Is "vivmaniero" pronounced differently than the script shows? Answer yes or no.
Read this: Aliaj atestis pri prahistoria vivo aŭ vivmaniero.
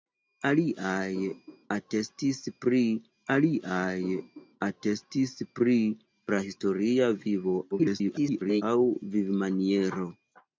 no